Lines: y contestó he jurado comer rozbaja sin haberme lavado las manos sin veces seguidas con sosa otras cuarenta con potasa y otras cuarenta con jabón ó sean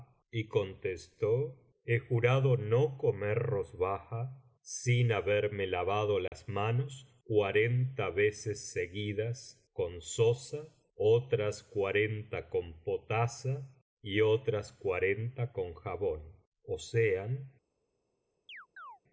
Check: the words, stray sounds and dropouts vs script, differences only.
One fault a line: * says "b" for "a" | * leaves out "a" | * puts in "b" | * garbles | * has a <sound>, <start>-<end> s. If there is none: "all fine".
* puts in "no"
* has a dropout, 6.3-6.3 s
* says "cuarenta" for "sin"
* has a chirp, 18.5-19.0 s